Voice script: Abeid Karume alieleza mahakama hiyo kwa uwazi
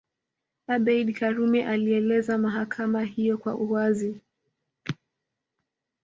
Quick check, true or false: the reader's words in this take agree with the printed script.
true